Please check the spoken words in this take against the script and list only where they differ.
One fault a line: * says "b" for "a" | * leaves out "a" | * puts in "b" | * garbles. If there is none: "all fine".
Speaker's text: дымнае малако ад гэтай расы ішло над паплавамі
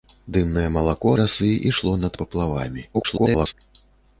* leaves out "ад гэтай"
* garbles